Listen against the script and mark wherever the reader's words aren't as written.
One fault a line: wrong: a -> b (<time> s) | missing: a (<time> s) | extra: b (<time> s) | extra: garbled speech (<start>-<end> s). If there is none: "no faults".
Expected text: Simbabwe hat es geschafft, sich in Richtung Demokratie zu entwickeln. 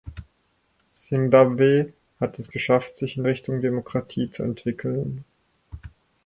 no faults